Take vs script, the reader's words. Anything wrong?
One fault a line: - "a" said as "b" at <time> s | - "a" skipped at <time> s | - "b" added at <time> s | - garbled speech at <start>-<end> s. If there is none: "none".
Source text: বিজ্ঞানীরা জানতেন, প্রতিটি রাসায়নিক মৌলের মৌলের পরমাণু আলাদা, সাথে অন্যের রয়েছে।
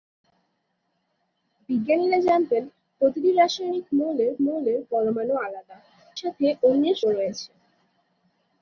none